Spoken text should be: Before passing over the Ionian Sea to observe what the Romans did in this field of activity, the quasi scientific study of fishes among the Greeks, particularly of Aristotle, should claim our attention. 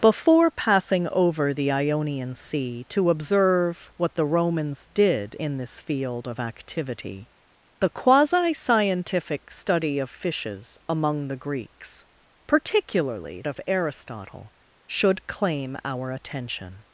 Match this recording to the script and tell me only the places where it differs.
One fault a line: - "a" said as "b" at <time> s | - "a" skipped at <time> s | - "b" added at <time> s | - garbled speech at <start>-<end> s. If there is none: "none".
none